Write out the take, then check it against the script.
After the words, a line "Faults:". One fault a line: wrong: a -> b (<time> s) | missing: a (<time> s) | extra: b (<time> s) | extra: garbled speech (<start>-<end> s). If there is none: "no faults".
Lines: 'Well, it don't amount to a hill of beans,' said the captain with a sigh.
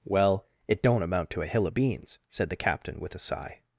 'Well, it don't amount to a hill of beans,' said the captain with a sigh.
Faults:
no faults